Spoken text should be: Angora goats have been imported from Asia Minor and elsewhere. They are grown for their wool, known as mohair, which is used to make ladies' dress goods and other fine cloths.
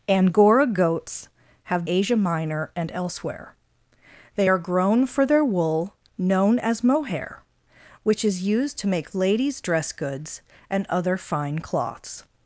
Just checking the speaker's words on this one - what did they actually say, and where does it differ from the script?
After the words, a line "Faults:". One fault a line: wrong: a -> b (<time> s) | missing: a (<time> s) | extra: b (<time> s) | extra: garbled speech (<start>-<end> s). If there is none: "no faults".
Angora goats have Asia Minor and elsewhere. They are grown for their wool, known as mohair, which is used to make ladies' dress goods and other fine cloths.
Faults:
missing: been imported from (1.9 s)